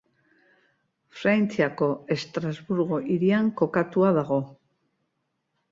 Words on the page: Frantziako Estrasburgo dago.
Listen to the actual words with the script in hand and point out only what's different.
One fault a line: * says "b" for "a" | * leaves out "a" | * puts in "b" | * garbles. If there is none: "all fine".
* puts in "hirian kokatua"